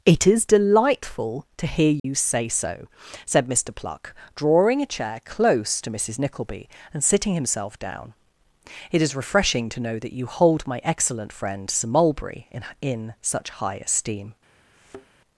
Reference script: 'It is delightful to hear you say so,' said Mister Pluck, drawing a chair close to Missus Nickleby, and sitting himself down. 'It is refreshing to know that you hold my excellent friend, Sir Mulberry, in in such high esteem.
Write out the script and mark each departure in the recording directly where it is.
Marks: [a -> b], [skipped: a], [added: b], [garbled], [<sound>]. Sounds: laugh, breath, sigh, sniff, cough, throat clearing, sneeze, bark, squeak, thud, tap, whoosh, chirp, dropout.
'It is delightful to hear you [dropout] say so,' said Mister Pluck, drawing a chair close to Missus Nickleby, and sitting himself down. 'It is refreshing to know that you hold my excellent friend, Sir Mulberry, in in such high esteem. [thud]